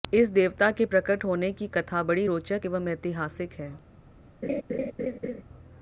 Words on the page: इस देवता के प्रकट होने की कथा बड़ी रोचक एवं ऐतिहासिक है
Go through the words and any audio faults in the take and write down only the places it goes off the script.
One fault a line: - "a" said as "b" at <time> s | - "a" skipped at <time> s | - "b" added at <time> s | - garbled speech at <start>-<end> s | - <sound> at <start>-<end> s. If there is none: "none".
- laugh at 4.4-5.4 s